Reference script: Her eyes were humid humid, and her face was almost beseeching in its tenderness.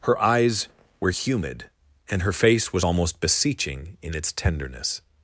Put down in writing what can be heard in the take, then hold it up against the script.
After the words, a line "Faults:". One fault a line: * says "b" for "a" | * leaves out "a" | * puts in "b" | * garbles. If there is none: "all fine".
Her eyes were humid, and her face was almost beseeching in its tenderness.
Faults:
* leaves out "humid"